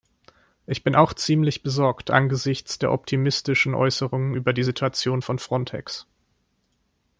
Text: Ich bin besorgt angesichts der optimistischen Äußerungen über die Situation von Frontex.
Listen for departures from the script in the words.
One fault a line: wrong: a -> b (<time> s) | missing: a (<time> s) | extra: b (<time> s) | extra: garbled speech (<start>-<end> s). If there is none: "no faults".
extra: auch ziemlich (0.9 s)